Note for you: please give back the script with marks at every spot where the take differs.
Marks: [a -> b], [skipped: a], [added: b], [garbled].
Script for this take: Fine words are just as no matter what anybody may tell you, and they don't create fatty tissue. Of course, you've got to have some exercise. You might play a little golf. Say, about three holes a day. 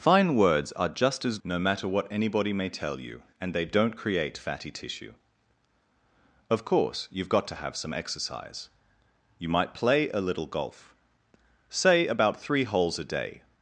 Fine words are just as no matter what anybody may tell you, and they don't create fatty tissue. Of course, you've got to have some exercise. You might play a little golf. Say, about three holes a day.